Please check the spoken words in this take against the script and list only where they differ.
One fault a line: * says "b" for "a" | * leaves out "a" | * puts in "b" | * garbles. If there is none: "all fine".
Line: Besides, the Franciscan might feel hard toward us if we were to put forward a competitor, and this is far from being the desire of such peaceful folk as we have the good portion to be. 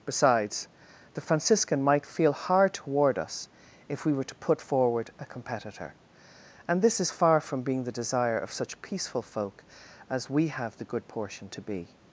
all fine